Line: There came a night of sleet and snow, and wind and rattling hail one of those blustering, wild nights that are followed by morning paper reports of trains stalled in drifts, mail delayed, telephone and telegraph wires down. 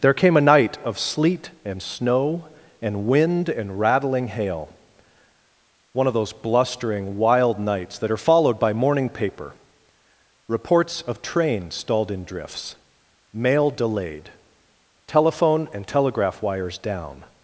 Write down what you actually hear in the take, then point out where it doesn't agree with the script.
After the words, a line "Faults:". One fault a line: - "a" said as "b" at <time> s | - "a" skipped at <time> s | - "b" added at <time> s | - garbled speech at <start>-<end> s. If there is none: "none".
There came a night of sleet and snow, and wind and rattling hail one of those blustering, wild nights that are followed by morning paper reports of trains stalled in drifts, mail delayed, telephone and telegraph wires down.
Faults:
none